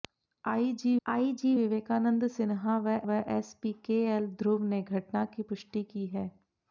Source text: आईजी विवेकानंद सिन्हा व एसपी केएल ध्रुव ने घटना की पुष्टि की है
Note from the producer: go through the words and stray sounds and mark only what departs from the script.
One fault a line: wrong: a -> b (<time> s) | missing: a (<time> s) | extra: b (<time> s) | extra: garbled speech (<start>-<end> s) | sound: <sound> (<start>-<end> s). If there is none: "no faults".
extra: आईजी (1.0 s)
extra: व (3.1 s)